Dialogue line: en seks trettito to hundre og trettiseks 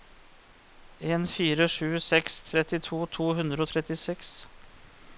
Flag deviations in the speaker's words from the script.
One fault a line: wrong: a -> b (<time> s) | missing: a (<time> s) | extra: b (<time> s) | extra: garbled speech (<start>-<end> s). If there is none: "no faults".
extra: fire sju (1.3 s)